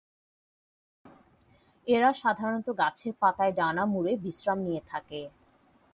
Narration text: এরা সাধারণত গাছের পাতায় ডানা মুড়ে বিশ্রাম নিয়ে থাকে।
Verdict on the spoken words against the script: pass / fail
pass